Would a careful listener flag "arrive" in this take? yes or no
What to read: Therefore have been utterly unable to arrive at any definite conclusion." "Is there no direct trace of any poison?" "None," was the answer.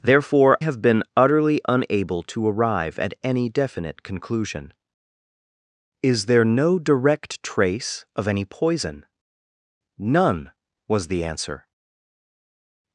no